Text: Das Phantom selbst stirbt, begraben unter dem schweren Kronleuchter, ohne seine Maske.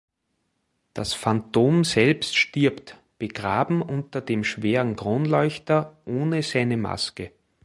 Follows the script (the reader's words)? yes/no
yes